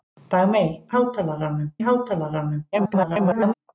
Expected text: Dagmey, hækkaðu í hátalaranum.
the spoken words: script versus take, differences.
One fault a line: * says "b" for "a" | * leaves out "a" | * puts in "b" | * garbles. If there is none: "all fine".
* says "hátalaranum" for "hækkaðu"
* garbles